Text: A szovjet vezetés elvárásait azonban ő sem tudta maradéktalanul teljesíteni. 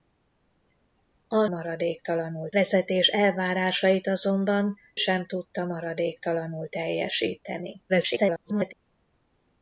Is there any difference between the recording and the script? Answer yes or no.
yes